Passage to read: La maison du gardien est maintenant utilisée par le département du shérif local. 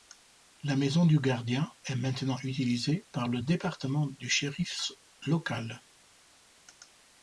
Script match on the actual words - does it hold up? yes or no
yes